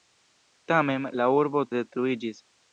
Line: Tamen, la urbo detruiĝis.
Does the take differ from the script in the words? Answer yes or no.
no